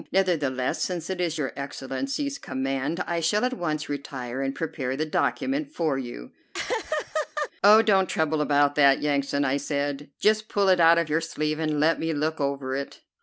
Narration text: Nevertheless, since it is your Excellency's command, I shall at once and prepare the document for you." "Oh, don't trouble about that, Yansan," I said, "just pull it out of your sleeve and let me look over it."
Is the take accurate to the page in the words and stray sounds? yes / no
no